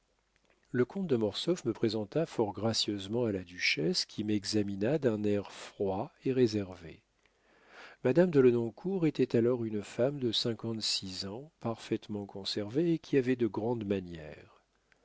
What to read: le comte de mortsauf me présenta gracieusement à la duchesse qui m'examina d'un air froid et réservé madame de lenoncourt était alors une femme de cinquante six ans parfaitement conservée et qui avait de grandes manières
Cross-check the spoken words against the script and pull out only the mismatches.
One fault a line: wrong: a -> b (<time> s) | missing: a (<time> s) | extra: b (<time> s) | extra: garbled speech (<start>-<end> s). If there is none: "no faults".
extra: fort (2.3 s)